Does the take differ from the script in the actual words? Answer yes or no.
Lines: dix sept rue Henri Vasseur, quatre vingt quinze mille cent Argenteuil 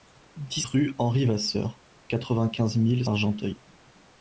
yes